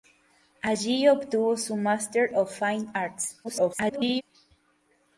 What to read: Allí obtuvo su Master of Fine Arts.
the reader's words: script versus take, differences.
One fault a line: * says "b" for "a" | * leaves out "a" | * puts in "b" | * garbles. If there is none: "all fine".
* garbles